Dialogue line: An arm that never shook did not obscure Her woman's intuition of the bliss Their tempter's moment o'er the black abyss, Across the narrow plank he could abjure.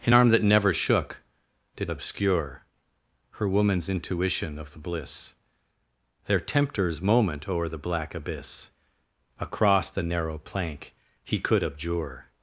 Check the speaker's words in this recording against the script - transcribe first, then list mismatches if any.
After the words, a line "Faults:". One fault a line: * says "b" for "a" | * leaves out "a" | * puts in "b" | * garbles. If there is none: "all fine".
An arm that never shook did obscure Her woman's intuition of the bliss Their tempter's moment o'er the black abyss, Across the narrow plank he could abjure.
Faults:
* leaves out "not"